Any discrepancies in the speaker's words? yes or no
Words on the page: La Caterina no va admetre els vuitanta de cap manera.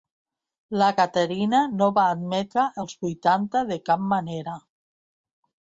no